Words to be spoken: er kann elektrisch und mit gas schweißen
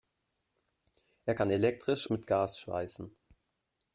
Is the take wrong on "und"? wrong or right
wrong